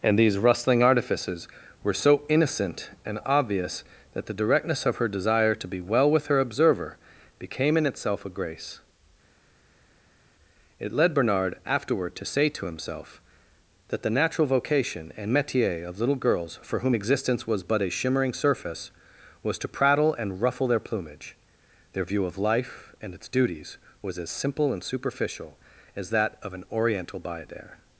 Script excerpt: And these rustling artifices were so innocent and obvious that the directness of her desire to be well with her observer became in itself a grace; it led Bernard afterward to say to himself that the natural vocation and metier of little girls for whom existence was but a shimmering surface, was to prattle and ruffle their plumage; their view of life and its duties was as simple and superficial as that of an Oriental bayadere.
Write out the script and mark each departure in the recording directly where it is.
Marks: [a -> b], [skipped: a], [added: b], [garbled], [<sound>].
And these rustling artifices were so innocent and obvious that the directness of her desire to be well with her observer became in itself a grace; it led Bernard afterward to say to himself that the natural vocation and metier of little girls for whom existence was but a shimmering surface, was to prattle and ruffle their plumage; their view of life and its duties was as simple and superficial as that of an Oriental bayadere.